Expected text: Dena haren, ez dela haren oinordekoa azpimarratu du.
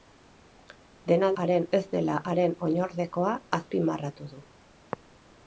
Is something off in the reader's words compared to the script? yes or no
no